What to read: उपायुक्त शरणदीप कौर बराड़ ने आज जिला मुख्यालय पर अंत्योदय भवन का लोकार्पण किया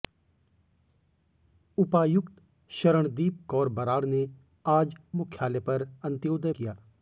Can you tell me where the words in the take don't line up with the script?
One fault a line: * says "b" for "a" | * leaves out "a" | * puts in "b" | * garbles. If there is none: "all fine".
* leaves out "जिला"
* leaves out "भवन का लोकार्पण"